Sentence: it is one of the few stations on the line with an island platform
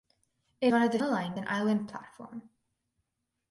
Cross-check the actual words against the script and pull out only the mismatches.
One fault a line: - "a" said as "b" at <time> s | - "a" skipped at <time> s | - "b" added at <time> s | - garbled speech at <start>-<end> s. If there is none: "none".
- "is" skipped at 0.7 s
- "few stations on" skipped at 1.0 s
- "with" skipped at 1.4 s